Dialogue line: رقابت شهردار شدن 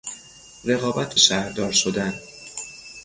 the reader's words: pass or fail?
pass